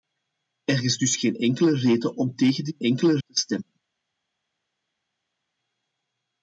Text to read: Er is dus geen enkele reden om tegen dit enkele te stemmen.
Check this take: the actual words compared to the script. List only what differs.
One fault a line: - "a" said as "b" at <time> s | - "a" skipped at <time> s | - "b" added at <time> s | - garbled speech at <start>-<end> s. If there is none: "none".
none